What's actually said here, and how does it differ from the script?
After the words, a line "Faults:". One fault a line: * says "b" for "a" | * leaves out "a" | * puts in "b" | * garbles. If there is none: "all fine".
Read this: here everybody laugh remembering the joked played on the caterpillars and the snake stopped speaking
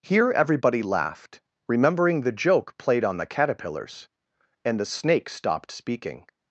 here everybody laughed remembering the joke played on the caterpillars and the snake stopped speaking
Faults:
* says "laughed" for "laugh"
* says "joke" for "joked"